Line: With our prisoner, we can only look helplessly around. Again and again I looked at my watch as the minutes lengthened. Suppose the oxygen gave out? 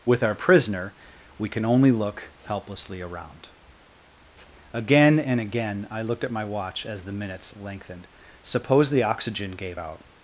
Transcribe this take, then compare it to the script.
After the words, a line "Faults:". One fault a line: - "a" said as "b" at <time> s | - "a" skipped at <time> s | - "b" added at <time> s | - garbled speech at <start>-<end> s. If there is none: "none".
With our prisoner, we can only look helplessly around. Again and again I looked at my watch as the minutes lengthened. Suppose the oxygen gave out?
Faults:
none